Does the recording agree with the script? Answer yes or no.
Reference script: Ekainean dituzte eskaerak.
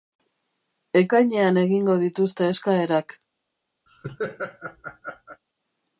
no